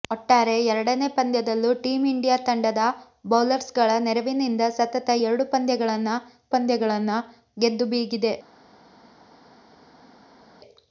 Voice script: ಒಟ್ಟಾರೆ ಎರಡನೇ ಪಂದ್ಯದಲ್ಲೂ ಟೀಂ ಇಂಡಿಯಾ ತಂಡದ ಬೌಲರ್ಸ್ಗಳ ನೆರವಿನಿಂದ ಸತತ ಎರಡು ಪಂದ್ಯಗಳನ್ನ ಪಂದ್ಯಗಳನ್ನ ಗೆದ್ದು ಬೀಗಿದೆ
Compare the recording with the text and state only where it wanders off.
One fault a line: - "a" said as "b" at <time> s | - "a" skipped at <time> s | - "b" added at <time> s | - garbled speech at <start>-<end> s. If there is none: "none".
none